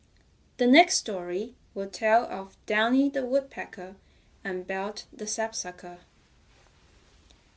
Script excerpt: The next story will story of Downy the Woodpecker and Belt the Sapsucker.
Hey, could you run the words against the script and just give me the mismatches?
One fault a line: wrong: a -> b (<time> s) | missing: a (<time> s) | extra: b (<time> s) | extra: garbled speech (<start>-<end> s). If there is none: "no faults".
wrong: story -> tell (1.9 s)